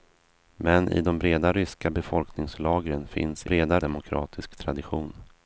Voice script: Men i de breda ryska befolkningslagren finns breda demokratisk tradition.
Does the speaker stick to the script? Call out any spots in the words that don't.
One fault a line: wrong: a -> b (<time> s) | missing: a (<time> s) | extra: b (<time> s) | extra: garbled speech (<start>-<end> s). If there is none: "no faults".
no faults